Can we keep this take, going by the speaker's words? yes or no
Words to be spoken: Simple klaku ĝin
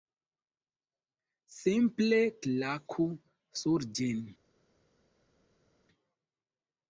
no